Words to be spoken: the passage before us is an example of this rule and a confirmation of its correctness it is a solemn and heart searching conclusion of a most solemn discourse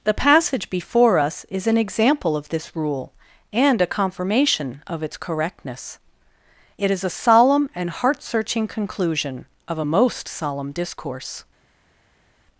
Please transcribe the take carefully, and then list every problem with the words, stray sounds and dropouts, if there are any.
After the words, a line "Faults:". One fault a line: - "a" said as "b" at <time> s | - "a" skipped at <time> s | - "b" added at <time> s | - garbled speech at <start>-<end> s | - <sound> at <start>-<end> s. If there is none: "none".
the passage before us is an example of this rule and a confirmation of its correctness it is a solemn and heart searching conclusion of a most solemn discourse
Faults:
none